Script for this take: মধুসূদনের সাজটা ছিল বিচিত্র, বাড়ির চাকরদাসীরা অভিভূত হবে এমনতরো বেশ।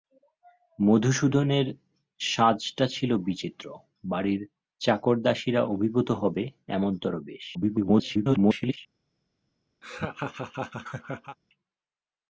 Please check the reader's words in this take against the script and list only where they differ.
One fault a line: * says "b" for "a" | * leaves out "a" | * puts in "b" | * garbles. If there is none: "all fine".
* garbles